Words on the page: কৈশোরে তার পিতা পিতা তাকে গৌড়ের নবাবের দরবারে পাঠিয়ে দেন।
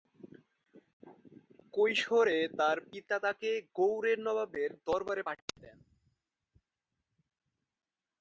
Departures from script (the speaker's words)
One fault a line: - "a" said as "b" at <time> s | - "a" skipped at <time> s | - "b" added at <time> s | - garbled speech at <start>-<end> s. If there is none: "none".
- "পিতা" skipped at 3.2 s